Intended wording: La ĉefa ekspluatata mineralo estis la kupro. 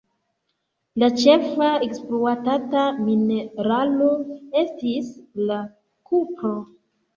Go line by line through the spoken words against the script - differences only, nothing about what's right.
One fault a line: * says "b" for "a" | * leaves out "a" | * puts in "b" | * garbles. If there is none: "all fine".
all fine